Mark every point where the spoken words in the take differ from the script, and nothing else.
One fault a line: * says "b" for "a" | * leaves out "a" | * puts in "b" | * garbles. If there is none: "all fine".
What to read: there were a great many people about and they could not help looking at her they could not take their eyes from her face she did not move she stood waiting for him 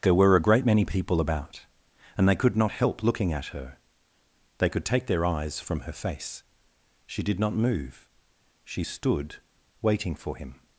* leaves out "not"